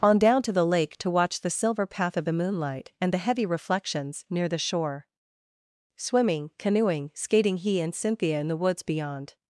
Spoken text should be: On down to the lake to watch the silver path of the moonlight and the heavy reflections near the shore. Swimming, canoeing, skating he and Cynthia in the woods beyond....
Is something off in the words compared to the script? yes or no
no